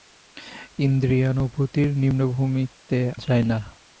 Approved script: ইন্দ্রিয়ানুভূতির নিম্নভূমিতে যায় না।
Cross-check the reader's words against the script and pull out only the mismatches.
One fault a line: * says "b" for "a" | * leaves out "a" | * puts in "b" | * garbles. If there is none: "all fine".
all fine